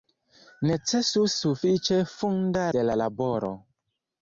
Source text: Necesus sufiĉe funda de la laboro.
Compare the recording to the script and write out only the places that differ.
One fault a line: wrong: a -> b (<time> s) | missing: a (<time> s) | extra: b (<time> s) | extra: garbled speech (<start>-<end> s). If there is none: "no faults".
no faults